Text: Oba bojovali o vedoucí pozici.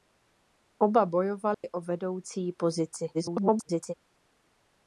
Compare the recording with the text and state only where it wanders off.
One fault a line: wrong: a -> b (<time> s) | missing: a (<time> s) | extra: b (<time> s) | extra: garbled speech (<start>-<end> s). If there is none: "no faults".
extra: garbled speech (3.1-3.9 s)